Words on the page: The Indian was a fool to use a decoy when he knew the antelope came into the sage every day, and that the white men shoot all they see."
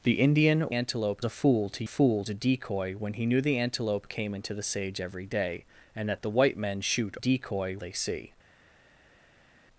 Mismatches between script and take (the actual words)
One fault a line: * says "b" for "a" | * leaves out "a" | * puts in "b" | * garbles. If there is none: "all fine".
* says "antelope" for "was"
* says "fool" for "use"
* says "decoy" for "all"